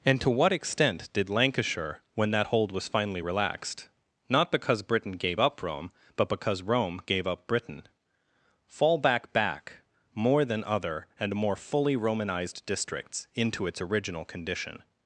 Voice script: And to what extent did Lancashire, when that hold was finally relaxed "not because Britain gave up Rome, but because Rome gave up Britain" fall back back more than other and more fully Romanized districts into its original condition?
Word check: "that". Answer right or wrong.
right